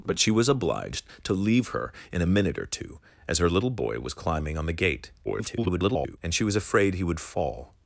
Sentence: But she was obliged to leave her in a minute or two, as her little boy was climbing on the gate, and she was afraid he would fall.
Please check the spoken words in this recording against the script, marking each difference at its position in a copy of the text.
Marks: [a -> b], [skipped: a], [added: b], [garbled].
But she was obliged to leave her in a minute or two, as her little boy was climbing on the gate, [garbled] and she was afraid he would fall.